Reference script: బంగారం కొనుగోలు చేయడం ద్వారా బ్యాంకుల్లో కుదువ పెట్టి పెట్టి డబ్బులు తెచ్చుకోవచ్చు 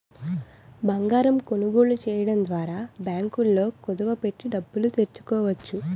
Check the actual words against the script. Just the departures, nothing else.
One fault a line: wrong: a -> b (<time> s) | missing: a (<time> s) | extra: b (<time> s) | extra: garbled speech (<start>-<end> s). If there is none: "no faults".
missing: పెట్టి (4.5 s)